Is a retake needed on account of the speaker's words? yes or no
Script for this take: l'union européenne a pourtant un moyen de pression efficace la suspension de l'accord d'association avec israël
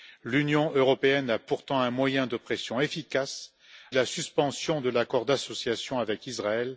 no